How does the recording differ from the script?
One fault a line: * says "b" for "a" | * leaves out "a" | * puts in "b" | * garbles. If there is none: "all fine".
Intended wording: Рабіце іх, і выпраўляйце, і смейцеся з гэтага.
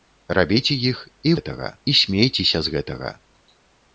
* says "гэтага" for "выпраўляйце"